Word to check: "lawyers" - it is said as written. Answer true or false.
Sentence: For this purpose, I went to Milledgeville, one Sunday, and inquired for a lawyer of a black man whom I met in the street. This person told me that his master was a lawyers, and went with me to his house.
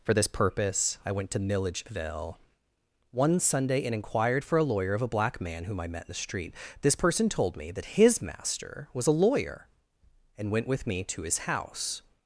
false